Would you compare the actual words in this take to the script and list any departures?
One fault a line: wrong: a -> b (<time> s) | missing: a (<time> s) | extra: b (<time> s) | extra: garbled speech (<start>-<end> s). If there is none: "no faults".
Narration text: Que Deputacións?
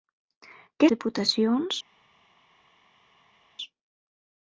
no faults